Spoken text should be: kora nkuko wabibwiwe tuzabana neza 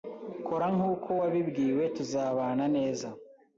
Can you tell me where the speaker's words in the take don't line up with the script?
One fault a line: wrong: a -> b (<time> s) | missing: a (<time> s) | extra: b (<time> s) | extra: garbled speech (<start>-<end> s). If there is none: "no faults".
no faults